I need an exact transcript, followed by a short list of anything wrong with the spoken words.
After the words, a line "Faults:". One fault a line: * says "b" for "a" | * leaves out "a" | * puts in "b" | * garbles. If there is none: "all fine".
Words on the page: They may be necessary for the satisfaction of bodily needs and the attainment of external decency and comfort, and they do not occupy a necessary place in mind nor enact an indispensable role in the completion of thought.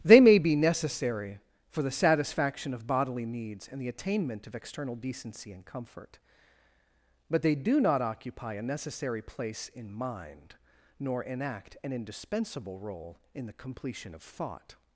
They may be necessary for the satisfaction of bodily needs and the attainment of external decency and comfort, but they do not occupy a necessary place in mind nor enact an indispensable role in the completion of thought.
Faults:
* says "but" for "and"